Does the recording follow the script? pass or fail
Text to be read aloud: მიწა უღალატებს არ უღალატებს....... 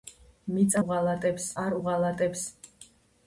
pass